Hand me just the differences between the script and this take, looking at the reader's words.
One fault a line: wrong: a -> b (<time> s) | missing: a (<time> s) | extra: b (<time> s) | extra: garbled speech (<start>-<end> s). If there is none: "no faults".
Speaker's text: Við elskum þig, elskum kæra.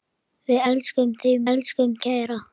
no faults